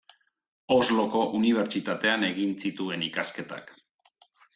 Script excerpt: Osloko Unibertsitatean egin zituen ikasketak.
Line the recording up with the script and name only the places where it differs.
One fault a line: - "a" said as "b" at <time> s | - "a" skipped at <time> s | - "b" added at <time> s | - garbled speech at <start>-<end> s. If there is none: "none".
none